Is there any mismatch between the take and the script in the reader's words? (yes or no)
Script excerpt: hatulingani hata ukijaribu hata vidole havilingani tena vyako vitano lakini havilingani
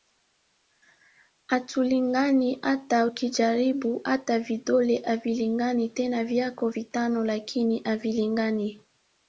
no